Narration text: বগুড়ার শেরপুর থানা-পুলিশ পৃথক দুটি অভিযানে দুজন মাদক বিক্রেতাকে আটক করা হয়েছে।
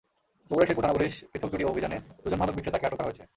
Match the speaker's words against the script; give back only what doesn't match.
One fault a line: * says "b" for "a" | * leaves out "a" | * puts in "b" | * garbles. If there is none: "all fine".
all fine